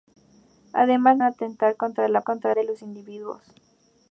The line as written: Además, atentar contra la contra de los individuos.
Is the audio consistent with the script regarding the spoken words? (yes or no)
yes